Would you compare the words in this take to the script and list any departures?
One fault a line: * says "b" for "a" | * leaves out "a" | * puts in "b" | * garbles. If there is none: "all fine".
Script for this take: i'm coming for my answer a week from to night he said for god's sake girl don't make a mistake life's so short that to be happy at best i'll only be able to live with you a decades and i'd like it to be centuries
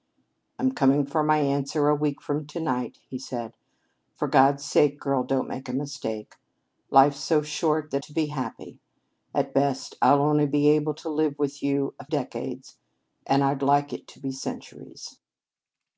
all fine